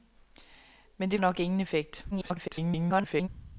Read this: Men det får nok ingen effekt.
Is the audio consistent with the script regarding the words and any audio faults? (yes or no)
no